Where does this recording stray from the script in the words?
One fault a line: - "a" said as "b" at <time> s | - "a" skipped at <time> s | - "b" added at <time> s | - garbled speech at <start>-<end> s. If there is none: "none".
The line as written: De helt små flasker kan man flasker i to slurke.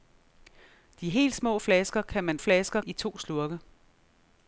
none